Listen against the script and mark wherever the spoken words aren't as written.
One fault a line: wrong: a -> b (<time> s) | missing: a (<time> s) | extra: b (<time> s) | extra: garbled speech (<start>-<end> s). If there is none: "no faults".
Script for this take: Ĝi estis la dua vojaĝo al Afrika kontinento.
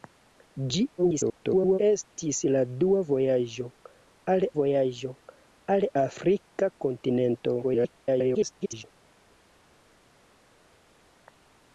extra: garbled speech (1.0-1.8 s)
extra: vojaĝo al (4.6 s)
extra: garbled speech (7.6-8.8 s)